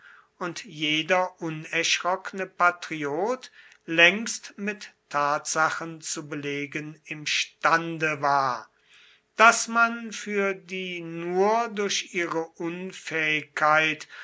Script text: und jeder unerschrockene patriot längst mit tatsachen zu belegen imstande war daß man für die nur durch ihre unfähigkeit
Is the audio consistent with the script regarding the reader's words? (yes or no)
yes